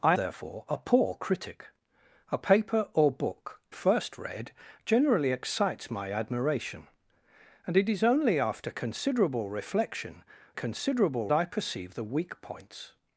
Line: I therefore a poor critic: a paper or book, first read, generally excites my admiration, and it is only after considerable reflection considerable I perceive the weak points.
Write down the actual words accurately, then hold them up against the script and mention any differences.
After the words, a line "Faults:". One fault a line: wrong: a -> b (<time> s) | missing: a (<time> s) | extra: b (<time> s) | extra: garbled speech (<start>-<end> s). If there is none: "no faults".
I therefore a poor critic: a paper or book, first read, generally excites my admiration, and it is only after considerable reflection considerable I perceive the weak points.
Faults:
no faults